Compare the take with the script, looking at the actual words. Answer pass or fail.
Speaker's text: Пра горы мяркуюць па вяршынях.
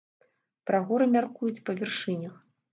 pass